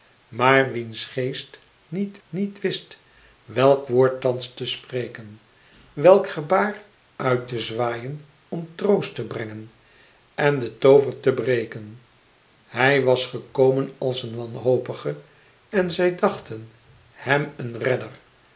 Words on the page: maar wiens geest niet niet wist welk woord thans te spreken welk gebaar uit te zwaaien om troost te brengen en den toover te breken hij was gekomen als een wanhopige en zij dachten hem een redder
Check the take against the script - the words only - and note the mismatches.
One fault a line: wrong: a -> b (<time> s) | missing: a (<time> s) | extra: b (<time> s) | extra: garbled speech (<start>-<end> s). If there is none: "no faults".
no faults